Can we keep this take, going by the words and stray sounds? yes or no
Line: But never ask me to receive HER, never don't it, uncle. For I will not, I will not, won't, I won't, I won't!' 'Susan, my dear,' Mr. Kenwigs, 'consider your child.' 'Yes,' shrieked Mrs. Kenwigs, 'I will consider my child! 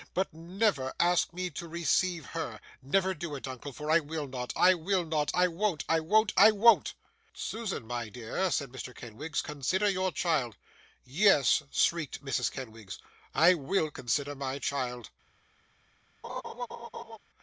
no